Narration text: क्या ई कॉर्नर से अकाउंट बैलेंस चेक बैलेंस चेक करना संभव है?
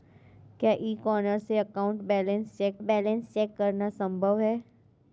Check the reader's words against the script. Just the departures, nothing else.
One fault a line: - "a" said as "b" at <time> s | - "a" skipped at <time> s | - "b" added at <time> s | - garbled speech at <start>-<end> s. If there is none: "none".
none